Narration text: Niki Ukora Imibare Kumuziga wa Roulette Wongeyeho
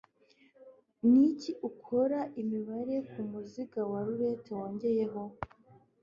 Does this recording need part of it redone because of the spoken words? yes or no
no